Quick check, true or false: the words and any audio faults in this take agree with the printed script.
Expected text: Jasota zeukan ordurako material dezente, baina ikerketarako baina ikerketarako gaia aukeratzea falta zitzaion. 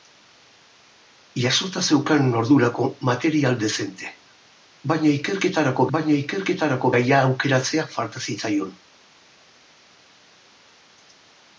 true